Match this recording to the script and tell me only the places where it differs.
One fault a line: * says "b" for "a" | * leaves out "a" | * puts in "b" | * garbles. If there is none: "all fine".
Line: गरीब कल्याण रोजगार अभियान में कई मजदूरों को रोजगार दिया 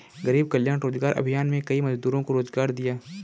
all fine